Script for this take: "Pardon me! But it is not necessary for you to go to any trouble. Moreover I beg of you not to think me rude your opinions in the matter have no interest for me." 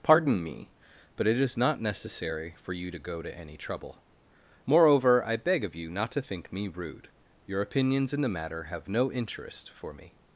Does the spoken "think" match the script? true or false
true